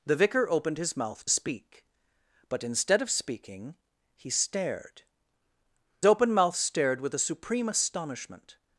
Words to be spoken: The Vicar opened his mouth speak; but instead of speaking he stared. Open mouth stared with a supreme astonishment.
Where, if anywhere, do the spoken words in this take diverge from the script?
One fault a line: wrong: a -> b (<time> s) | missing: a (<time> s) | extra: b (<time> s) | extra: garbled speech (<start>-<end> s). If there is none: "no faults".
no faults